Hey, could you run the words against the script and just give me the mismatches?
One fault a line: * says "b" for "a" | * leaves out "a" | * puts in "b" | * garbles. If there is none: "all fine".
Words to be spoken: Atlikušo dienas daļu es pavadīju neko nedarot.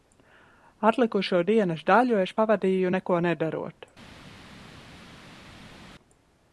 all fine